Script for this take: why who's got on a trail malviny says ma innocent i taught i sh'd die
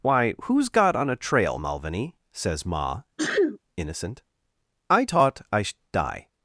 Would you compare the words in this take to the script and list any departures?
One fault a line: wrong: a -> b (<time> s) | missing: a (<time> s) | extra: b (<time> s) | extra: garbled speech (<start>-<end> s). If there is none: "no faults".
no faults